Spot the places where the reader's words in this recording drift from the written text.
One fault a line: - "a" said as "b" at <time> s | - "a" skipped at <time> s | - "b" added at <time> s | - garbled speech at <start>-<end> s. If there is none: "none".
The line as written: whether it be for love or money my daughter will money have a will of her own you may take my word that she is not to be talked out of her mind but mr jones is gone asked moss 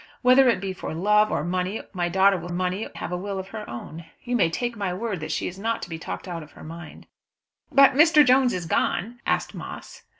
none